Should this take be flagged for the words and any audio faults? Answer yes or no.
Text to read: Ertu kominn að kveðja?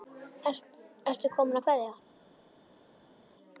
no